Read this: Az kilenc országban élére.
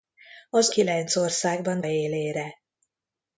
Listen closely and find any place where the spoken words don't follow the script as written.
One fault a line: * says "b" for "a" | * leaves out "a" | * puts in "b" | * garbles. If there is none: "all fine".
all fine